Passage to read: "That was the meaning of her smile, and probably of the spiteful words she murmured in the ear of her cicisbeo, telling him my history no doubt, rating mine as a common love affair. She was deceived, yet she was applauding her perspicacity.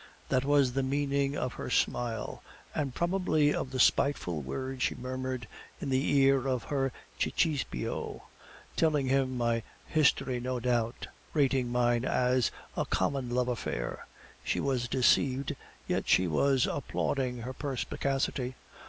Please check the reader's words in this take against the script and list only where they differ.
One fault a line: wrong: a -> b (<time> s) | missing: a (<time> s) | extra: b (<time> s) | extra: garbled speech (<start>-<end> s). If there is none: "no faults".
no faults